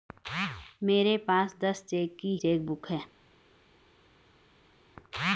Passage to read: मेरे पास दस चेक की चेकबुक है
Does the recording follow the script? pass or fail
pass